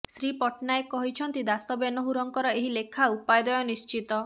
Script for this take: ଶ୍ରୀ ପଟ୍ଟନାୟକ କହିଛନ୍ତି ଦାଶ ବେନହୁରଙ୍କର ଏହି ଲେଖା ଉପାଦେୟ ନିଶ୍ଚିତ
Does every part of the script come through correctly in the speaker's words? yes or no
yes